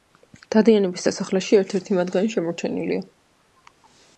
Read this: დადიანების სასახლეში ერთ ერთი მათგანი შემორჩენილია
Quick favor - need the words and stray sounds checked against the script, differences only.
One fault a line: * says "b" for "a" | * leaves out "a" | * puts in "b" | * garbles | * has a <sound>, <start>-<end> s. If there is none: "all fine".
all fine